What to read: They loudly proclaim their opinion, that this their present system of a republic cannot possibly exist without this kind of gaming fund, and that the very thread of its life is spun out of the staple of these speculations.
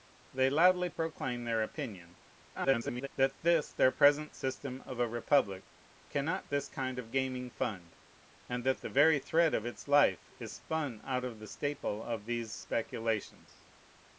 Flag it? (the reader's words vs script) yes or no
yes